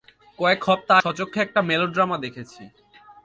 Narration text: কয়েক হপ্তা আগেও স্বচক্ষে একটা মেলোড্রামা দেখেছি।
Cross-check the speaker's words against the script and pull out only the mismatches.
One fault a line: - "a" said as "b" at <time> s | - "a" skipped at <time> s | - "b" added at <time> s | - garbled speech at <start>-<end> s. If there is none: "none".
- "আগেও" skipped at 0.9 s